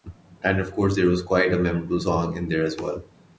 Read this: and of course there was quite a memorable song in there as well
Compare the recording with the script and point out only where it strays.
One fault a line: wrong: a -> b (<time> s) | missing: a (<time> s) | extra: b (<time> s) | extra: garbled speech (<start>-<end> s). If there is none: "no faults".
no faults